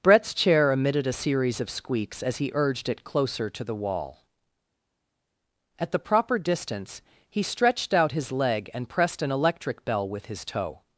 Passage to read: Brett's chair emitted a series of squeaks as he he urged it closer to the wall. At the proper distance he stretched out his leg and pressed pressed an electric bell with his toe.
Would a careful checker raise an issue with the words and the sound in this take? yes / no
yes